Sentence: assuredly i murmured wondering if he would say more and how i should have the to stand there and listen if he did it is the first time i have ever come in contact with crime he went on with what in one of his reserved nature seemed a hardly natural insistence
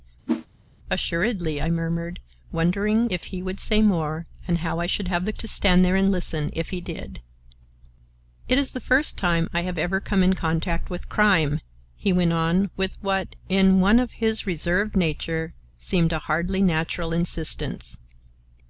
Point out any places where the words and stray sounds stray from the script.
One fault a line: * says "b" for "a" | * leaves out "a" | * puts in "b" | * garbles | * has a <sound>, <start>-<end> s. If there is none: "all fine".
* has a whoosh, 0.3-0.5 s